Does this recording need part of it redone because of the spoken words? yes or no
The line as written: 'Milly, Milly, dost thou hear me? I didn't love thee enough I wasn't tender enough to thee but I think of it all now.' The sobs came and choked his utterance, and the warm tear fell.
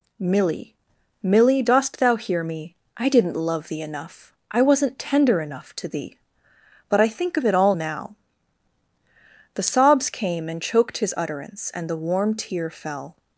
no